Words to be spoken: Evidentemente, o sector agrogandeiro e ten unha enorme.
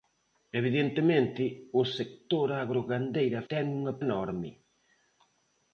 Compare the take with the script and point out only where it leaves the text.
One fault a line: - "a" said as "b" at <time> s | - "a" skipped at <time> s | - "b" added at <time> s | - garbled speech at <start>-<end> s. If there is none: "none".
none